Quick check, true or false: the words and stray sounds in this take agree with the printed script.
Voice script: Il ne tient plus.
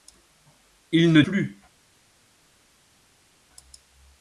false